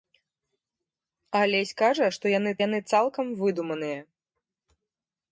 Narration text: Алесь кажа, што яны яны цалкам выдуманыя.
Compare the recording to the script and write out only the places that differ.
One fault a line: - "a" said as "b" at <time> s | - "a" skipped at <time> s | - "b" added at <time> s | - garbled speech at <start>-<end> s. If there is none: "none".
none